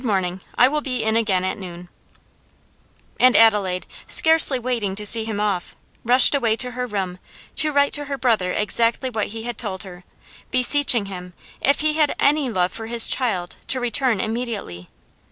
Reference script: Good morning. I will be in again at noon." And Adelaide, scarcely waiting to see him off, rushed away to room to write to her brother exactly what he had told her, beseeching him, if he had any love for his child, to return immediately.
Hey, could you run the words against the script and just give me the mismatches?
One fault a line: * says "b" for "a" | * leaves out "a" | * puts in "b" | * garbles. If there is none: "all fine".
* puts in "her"